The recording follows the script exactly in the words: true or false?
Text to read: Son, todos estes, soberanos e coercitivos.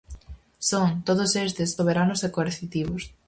true